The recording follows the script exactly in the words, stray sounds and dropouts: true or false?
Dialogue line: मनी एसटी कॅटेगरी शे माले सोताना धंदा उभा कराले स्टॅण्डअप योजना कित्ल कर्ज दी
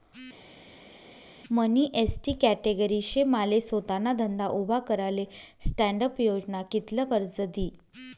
true